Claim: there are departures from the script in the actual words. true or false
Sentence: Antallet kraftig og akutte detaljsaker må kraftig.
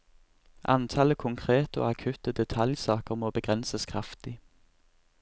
true